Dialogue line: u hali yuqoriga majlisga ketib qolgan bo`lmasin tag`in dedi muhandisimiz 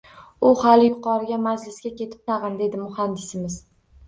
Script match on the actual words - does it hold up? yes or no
no